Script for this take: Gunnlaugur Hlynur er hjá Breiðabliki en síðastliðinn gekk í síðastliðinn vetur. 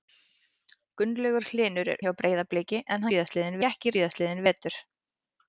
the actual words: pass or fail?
pass